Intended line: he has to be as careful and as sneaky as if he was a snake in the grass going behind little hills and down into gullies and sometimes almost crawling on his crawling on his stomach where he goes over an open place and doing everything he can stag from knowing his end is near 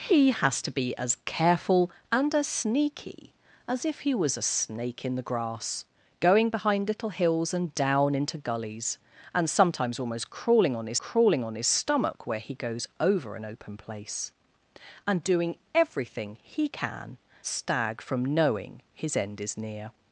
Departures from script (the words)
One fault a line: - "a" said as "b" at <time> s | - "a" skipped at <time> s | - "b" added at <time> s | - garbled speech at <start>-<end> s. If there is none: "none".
none